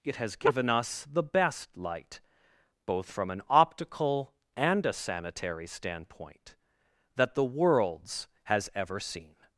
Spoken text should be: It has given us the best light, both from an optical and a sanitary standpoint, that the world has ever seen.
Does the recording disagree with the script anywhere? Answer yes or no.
yes